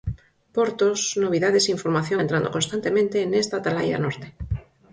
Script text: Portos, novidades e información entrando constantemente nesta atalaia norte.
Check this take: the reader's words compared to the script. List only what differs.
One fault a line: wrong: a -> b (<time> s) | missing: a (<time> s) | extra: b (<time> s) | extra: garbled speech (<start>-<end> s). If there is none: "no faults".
no faults